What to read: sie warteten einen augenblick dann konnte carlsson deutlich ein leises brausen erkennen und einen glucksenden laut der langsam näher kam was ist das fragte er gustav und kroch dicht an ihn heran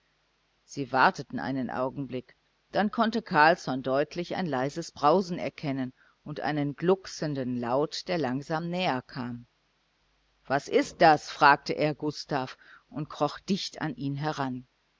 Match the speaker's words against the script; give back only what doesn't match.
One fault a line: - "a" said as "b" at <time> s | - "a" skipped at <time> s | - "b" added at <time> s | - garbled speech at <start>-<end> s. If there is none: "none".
none